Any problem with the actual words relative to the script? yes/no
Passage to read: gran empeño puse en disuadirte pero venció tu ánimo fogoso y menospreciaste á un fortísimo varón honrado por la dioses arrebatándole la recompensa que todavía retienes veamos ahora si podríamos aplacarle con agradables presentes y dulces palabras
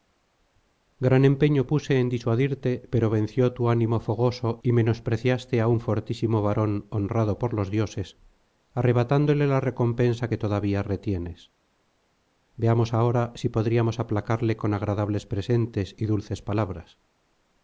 yes